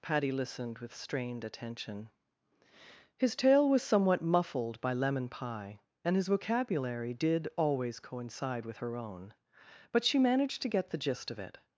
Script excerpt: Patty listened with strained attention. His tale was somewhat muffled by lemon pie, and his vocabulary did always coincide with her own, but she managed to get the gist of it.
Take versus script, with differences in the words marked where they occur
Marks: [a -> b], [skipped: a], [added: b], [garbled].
Patty listened with strained attention. His tale was somewhat muffled by lemon pie, and his vocabulary did always coincide with her own, but she managed to get the gist of it.